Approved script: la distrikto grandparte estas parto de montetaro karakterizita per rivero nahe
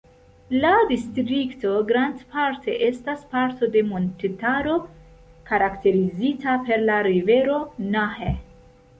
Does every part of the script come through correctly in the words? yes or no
no